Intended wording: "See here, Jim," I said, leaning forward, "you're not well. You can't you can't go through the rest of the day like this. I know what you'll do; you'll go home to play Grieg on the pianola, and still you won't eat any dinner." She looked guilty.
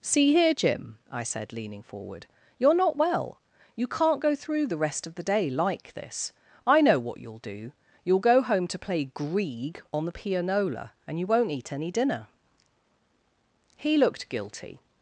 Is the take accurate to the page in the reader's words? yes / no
no